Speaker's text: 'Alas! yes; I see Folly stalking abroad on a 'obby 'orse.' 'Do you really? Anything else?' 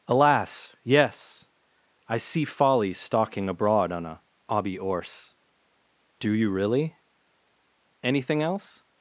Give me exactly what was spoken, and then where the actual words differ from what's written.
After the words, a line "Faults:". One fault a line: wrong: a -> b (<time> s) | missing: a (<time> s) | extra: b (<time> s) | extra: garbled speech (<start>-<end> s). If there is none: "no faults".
'Alas! yes; I see Folly stalking abroad on a 'obby 'orse.' 'Do you really? Anything else?'
Faults:
no faults